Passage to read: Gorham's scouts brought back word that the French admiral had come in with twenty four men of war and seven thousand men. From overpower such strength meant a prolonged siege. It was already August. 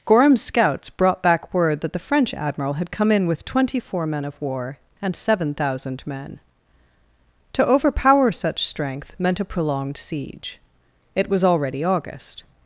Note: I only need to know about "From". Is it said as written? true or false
false